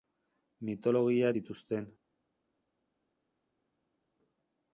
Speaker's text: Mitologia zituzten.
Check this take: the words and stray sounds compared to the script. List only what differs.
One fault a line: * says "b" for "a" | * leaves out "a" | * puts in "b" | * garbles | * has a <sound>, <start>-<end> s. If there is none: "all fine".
all fine